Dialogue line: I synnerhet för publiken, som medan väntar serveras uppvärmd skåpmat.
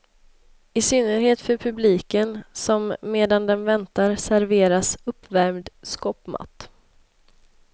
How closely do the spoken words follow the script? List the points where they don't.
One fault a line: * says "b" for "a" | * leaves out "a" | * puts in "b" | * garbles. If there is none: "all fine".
* puts in "den"